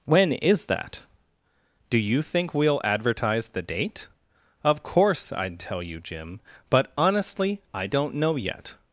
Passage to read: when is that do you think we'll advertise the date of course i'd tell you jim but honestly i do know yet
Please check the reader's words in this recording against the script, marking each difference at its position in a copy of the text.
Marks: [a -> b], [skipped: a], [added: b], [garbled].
when is that do you think we'll advertise the date of course i'd tell you jim but honestly i [do -> don't] know yet